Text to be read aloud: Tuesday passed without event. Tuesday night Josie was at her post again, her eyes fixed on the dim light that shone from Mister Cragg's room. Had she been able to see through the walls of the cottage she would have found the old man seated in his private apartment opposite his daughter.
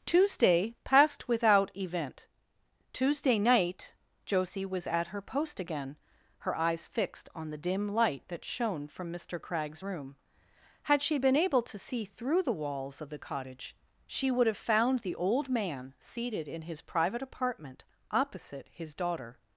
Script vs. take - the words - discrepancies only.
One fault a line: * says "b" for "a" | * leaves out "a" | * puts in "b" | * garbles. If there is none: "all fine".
all fine